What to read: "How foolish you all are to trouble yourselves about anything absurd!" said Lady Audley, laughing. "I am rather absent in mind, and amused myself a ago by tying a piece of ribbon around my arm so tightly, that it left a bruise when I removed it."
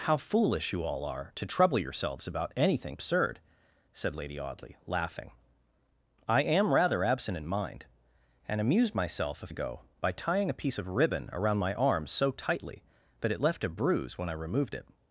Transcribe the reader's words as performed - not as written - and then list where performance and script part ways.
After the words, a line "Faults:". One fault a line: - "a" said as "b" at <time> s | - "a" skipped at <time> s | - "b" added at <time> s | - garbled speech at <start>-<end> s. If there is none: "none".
"How foolish you all are to trouble yourselves about anything absurd!" said Lady Audley, laughing. "I am rather absent in mind, and amused myself a ago by tying a piece of ribbon around my arm so tightly, that it left a bruise when I removed it."
Faults:
none